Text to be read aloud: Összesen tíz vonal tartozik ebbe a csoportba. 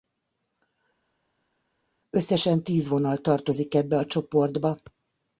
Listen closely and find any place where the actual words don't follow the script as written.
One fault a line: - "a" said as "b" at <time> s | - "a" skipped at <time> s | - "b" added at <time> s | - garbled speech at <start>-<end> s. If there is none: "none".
none